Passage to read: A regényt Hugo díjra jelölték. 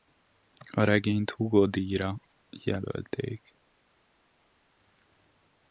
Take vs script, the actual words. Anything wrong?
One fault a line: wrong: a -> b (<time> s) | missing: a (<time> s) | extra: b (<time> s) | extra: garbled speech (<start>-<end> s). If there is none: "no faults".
no faults